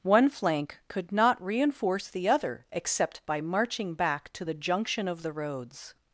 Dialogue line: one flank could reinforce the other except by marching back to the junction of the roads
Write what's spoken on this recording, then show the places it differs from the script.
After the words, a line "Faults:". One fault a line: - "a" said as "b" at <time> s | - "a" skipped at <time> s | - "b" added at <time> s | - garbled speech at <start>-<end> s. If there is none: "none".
one flank could not reinforce the other except by marching back to the junction of the roads
Faults:
- "not" added at 1.1 s